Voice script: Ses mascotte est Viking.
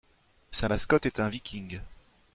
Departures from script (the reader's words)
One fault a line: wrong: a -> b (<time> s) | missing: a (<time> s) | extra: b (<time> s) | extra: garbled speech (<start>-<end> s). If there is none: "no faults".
wrong: Ses -> Sa (0.5 s)
extra: un (1.2 s)